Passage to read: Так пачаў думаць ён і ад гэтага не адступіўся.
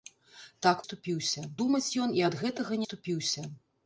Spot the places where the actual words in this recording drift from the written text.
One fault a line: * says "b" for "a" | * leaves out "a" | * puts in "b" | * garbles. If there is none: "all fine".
* says "адступіўся" for "пачаў"
* leaves out "не"